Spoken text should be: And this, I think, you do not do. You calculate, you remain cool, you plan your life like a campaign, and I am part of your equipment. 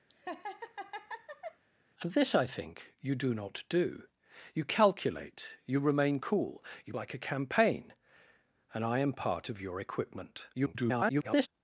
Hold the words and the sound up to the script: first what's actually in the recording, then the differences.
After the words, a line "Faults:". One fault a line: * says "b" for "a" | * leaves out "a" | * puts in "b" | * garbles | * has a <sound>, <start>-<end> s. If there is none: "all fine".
And this, I think, you do not do. You calculate, you remain cool, you like a campaign, and I am part of your equipment. [garbled]
Faults:
* has a laugh, 0.1-1.6 s
* leaves out "plan your life"
* garbles